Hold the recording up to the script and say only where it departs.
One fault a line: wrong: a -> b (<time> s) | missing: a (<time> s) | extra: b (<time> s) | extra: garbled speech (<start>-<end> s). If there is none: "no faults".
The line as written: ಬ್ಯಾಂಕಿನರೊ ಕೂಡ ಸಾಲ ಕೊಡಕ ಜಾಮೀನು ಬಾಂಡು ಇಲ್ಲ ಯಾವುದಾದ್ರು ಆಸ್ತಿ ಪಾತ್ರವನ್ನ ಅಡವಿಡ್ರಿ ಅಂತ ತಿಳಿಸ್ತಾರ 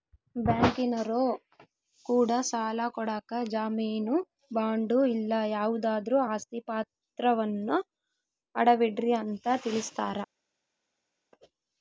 no faults